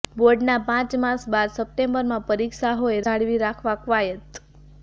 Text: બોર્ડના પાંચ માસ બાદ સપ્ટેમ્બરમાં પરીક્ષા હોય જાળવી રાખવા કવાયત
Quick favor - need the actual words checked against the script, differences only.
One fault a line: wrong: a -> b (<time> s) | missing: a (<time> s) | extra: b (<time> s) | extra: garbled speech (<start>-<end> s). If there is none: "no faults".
no faults